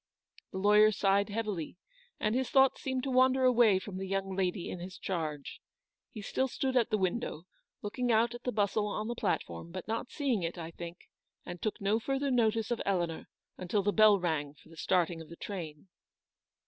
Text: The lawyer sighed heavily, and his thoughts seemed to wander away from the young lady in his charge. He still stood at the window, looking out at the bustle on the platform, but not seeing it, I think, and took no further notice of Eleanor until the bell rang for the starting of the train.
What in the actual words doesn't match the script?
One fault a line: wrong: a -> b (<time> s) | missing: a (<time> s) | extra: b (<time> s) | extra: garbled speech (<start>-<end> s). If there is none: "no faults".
no faults